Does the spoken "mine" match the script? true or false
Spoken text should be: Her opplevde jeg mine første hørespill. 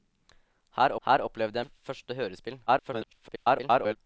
false